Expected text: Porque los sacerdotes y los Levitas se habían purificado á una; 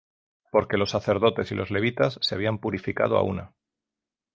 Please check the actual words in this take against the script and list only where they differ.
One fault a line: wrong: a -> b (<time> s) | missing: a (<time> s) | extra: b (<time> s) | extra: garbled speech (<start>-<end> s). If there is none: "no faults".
no faults